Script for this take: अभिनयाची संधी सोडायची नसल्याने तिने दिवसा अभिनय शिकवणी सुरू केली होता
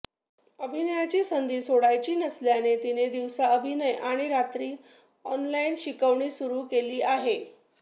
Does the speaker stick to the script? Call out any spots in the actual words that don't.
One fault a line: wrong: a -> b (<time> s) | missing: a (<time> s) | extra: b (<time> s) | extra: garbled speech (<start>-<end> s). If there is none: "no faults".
extra: आणि रात्री ऑनलाइन (3.9 s)
wrong: होता -> आहे (7.0 s)